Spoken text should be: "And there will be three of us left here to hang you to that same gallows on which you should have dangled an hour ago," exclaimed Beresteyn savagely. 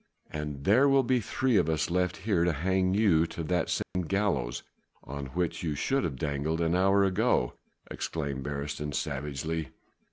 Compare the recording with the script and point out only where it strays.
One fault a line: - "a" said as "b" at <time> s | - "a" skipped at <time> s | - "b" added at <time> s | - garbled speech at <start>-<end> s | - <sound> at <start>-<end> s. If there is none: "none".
- dropout at 3.8-4.0 s